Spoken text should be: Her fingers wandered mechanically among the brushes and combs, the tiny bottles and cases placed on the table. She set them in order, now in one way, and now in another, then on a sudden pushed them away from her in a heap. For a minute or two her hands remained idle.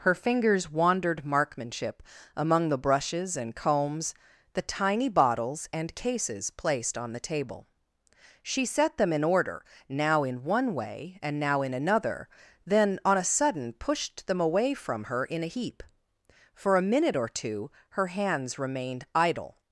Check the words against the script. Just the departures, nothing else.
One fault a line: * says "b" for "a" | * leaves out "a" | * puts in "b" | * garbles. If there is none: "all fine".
* says "markmanship" for "mechanically"